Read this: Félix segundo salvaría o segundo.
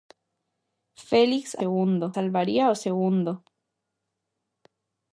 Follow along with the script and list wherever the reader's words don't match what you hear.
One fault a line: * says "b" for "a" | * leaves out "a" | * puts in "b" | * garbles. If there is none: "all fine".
all fine